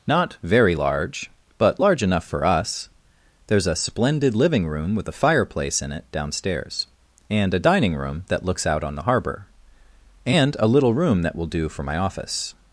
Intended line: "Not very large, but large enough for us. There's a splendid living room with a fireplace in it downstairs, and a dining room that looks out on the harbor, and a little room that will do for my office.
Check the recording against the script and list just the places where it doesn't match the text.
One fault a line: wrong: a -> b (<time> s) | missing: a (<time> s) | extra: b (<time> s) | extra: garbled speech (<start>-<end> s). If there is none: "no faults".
no faults